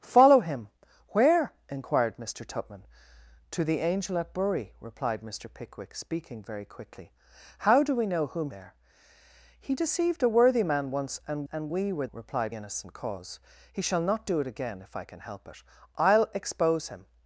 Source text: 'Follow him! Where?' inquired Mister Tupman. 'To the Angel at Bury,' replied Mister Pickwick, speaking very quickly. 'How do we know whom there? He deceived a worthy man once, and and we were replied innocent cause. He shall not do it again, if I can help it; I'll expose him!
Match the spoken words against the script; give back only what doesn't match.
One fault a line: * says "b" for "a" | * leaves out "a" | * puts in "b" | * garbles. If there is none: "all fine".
all fine